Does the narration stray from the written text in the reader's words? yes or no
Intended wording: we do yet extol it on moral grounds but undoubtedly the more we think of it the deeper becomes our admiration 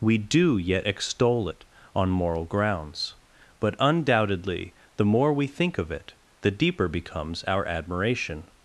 no